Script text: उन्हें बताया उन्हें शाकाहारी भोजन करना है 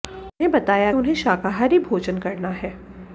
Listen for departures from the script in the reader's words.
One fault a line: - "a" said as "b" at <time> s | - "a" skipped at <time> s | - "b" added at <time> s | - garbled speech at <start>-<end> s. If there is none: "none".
none